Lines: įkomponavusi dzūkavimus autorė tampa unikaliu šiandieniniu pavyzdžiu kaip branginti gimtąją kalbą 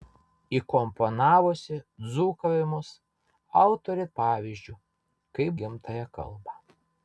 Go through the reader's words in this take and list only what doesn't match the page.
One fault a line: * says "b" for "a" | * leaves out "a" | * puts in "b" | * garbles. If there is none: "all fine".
* leaves out "tampa unikaliu šiandieniniu"
* leaves out "branginti"